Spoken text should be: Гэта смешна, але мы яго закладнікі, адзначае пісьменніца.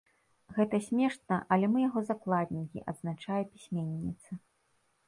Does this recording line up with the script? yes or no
yes